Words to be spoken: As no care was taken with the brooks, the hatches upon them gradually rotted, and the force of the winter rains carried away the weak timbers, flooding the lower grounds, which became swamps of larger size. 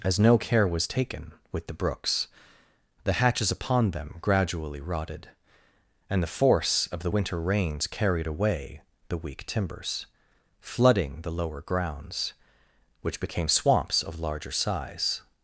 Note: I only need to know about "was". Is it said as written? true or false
true